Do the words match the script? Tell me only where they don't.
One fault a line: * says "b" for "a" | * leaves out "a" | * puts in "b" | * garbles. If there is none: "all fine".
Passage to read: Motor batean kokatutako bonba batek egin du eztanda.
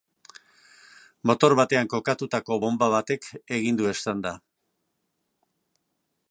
all fine